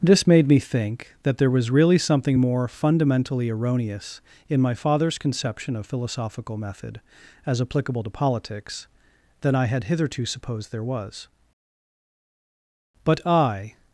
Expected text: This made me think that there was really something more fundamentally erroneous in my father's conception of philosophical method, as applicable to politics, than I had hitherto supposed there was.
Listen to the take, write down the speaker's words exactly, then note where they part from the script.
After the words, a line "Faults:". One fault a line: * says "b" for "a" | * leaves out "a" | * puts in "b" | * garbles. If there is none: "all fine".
This made me think that there was really something more fundamentally erroneous in my father's conception of philosophical method, as applicable to politics, than I had hitherto supposed there was. But I
Faults:
* puts in "But I"